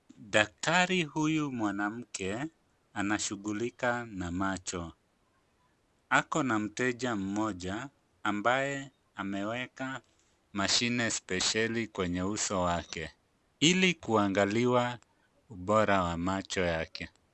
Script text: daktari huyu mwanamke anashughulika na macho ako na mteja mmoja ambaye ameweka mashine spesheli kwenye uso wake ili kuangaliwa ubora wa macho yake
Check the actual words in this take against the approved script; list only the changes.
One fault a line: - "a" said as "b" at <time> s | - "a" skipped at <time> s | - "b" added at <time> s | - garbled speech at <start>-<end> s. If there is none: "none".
none